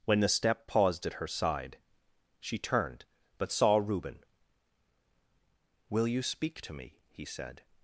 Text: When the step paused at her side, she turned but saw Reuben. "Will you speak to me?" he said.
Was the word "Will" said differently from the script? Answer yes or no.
no